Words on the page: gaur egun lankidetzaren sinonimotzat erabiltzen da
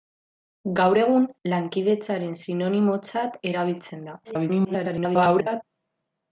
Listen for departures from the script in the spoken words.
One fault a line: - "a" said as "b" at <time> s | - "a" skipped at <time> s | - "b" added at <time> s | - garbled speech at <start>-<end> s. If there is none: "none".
- garbled speech at 4.2-5.6 s